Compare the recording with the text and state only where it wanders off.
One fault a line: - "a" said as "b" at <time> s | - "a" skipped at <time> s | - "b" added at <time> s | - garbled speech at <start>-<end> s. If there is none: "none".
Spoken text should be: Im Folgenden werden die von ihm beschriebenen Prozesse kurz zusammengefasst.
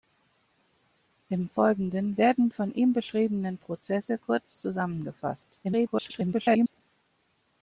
- "die" skipped at 2.5 s
- garbled speech at 5.6-6.8 s